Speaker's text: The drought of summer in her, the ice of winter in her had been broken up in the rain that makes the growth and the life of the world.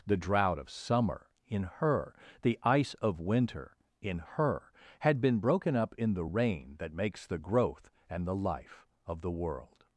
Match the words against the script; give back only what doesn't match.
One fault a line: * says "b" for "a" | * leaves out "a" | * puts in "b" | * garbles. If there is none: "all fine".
all fine